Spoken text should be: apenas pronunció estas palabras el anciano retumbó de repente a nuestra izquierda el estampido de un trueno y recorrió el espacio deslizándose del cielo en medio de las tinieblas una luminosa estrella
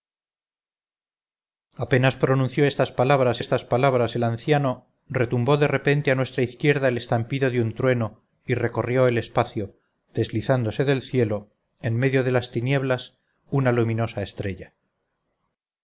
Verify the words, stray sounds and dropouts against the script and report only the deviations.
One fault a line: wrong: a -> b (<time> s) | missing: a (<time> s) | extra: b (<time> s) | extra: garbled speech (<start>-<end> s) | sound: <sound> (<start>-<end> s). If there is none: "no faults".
extra: estas palabras (3.4 s)